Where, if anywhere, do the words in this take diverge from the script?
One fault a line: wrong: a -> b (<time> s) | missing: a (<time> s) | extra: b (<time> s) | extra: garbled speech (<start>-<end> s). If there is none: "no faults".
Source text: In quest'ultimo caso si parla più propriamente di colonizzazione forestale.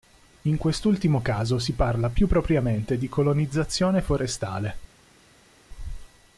no faults